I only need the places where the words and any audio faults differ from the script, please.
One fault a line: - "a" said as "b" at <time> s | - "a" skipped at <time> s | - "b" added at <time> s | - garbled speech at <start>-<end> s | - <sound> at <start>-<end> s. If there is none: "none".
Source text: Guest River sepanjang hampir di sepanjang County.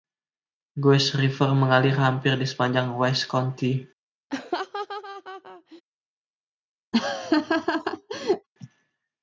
- "sepanjang" said as "mengalir" at 1.5 s
- "Wise" added at 3.0 s
- laugh at 4.3-5.8 s
- laugh at 6.9-8.5 s